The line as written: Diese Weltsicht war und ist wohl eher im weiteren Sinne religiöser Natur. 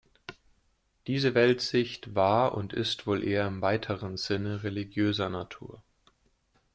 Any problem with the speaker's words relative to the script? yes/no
no